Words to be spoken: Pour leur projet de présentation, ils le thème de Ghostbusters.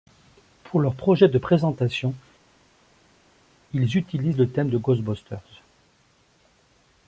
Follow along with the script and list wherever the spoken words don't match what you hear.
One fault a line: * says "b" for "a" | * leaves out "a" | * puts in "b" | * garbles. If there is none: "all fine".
* puts in "utilisent"